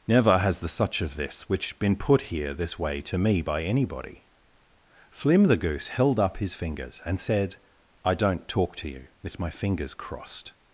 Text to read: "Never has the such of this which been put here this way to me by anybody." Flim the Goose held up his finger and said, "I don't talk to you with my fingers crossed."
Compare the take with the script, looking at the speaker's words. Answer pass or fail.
fail